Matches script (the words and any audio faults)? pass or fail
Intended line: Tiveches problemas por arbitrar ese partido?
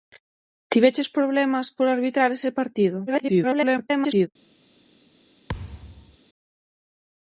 fail